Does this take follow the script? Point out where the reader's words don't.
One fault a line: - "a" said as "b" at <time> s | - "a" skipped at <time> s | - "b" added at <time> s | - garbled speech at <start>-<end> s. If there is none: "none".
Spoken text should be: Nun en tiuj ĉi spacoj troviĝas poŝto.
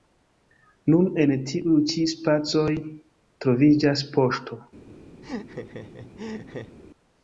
none